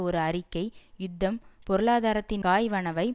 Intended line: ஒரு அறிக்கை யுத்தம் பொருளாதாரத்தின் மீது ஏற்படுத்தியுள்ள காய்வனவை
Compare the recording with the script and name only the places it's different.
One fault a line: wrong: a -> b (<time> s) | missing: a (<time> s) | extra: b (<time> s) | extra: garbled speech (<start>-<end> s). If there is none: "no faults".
missing: மீது ஏற்படுத்தியுள்ள (2.4 s)